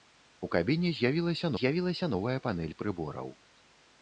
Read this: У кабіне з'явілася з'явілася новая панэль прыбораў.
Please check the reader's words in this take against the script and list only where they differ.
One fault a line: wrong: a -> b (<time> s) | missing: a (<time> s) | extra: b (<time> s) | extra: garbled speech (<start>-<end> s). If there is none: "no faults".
no faults